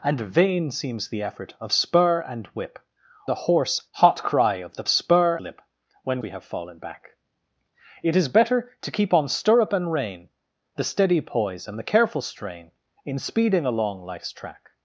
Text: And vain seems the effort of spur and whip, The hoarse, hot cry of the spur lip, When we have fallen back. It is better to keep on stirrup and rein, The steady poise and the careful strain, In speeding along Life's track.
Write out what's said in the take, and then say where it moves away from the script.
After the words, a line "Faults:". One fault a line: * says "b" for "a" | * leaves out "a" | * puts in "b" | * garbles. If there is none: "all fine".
And vain seems the effort of spur and whip, The hoarse, hot cry of the spur lip, When we have fallen back. It is better to keep on stirrup and rein, The steady poise and the careful strain, In speeding along Life's track.
Faults:
all fine